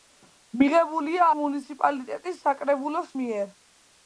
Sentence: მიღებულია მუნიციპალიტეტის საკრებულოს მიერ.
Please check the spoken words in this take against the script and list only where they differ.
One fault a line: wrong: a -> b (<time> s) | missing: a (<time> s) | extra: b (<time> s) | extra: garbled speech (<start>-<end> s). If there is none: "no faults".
no faults